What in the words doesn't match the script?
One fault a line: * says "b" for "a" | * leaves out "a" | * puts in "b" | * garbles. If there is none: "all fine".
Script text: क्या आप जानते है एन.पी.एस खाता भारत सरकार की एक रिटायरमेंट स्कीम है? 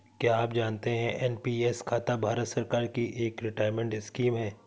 all fine